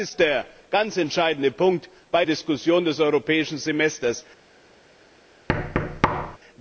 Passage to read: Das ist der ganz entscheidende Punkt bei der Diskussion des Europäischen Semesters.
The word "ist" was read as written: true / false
true